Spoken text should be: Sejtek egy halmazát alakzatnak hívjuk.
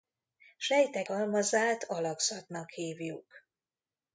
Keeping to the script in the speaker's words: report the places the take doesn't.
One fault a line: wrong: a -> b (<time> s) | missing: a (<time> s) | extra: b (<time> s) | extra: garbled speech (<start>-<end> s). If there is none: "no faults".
missing: egy (1.1 s)